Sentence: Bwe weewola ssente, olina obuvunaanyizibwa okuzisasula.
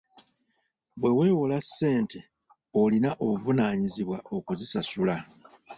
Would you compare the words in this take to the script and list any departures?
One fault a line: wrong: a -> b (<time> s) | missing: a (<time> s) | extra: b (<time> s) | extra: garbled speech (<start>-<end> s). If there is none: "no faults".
no faults